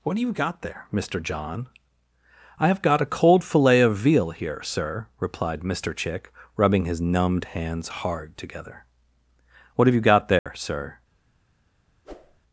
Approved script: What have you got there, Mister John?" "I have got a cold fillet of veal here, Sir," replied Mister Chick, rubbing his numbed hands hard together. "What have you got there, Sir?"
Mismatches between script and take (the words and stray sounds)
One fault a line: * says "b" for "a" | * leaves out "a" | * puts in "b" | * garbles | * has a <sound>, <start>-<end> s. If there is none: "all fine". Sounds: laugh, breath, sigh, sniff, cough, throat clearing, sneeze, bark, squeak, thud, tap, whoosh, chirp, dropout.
* has a dropout, 10.4-10.5 s
* has a whoosh, 12.0-12.4 s